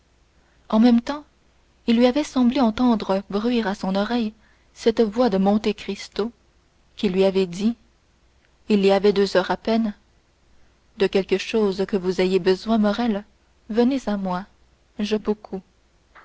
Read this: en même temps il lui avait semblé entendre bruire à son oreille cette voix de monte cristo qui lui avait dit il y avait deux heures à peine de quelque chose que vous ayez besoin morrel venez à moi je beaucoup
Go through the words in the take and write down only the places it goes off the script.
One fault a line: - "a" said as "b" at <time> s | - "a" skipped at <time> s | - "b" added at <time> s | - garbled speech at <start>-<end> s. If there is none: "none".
none